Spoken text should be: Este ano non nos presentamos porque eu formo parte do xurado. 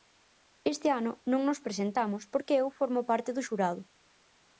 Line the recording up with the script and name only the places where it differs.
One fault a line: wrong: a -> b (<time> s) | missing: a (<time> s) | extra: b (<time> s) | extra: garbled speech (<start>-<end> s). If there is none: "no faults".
no faults